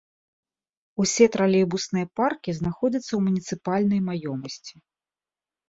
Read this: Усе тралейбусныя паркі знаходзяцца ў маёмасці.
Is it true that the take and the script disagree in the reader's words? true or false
true